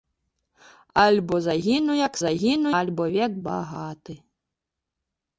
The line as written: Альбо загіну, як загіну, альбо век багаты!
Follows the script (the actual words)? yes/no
yes